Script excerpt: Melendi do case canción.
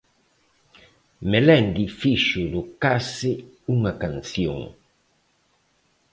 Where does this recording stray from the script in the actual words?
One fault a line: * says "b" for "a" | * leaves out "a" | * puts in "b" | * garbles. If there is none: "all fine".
* puts in "fixo"
* puts in "unha"